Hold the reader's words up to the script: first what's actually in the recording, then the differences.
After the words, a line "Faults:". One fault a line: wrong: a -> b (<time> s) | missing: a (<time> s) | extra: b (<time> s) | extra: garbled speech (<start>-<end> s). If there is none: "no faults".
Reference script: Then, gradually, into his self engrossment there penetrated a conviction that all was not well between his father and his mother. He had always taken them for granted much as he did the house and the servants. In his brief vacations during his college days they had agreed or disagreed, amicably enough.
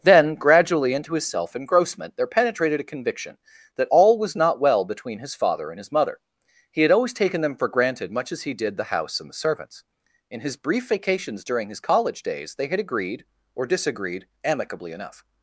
Then, gradually, into his self engrossment there penetrated a conviction that all was not well between his father and his mother. He had always taken them for granted much as he did the house and the servants. In his brief vacations during his college days they had agreed or disagreed, amicably enough.
Faults:
no faults